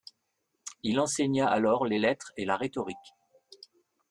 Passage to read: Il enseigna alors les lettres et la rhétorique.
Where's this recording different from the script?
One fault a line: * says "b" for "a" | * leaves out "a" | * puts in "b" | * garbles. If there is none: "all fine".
all fine